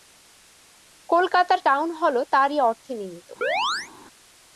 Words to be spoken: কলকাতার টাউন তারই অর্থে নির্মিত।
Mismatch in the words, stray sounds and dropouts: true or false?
true